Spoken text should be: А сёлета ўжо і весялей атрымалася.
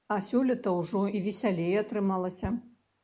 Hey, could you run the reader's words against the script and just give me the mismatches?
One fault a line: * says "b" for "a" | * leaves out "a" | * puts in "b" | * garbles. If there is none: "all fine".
all fine